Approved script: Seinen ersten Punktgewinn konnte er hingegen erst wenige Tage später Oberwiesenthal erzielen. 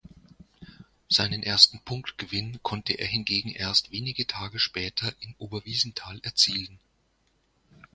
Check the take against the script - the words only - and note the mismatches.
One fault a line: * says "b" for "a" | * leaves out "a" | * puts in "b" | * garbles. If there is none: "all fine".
* puts in "in"